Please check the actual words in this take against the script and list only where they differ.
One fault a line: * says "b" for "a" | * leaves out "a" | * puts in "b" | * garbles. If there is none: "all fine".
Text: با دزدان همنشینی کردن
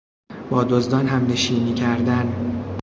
all fine